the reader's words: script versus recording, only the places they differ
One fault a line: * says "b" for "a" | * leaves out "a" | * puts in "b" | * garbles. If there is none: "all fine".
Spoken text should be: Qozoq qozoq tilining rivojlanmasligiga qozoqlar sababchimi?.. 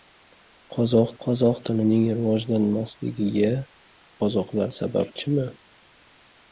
all fine